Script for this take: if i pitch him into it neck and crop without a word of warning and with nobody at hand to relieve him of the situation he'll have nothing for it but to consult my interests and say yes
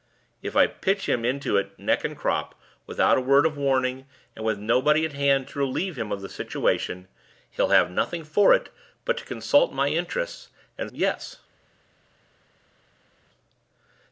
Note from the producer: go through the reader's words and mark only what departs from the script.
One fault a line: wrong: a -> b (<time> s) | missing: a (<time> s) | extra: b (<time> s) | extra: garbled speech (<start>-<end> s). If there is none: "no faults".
missing: say (10.9 s)